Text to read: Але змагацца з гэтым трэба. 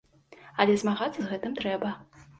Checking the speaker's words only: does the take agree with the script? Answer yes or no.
yes